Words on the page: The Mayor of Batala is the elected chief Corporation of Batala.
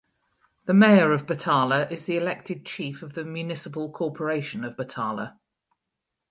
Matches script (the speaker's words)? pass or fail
fail